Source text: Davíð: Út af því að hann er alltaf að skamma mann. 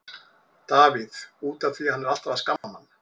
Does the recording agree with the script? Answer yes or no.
yes